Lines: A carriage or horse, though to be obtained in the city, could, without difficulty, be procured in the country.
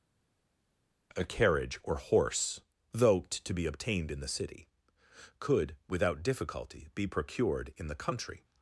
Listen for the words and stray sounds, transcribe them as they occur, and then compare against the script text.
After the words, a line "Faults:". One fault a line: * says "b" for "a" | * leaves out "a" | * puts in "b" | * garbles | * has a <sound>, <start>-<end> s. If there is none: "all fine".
A carriage or horse, though to be obtained in the city, could, without difficulty, be procured in the country.
Faults:
all fine